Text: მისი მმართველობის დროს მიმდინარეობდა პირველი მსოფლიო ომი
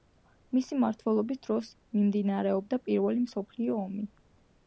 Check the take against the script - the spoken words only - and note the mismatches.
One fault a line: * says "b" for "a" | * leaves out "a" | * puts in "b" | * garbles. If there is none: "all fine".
all fine